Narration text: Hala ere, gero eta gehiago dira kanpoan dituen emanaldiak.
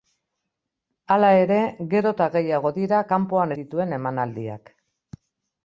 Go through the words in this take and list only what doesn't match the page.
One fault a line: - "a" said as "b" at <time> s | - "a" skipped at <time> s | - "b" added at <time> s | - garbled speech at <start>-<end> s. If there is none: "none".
none